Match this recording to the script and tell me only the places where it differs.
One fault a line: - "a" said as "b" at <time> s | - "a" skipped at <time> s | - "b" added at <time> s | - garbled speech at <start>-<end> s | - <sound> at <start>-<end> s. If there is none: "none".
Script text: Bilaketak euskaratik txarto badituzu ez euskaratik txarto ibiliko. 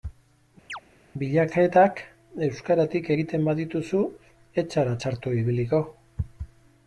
- chirp at 0.7-0.8 s
- "txarto" said as "egiten" at 3.1 s
- "euskaratik" said as "zara" at 4.8 s